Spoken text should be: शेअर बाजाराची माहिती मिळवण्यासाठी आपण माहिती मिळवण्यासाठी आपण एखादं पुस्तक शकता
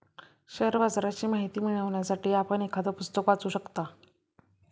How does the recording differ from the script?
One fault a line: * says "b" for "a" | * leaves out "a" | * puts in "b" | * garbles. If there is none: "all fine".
* leaves out "माहिती मिळवण्यासाठी आपण"
* puts in "वाचू"